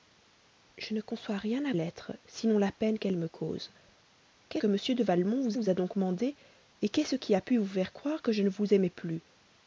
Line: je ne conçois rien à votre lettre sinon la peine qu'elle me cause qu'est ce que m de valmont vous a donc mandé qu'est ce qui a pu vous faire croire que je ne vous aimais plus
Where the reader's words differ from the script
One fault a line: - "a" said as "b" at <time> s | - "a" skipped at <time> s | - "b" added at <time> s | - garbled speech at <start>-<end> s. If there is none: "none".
- "votre" skipped at 1.7 s
- "ce" skipped at 4.6 s
- "vous" added at 5.5 s